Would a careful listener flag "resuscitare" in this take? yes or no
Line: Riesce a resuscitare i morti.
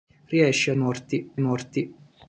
yes